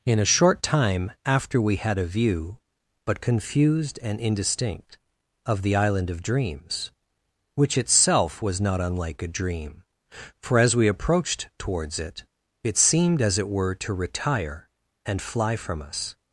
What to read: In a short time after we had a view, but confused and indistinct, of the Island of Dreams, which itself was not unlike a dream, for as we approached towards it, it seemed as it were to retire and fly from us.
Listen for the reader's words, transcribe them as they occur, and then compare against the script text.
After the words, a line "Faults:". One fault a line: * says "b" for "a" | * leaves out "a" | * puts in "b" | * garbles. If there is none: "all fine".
In a short time after we had a view, but confused and indistinct, of the Island of Dreams, which itself was not unlike a dream, for as we approached towards it, it seemed as it were to retire and fly from us.
Faults:
all fine